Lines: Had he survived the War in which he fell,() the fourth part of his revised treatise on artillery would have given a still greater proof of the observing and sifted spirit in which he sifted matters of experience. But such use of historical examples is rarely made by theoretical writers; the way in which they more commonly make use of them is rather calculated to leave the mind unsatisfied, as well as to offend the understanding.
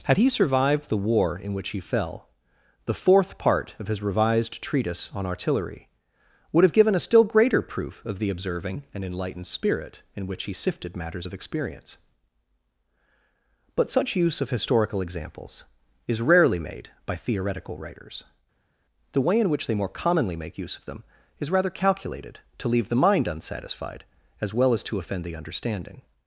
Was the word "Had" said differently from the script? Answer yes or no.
no